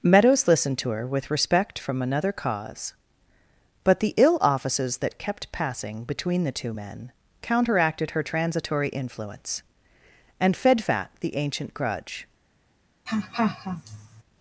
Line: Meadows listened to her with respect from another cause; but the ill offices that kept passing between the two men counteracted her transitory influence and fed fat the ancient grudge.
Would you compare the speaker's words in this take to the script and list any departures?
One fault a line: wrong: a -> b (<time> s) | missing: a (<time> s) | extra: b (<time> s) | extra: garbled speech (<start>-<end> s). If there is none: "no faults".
no faults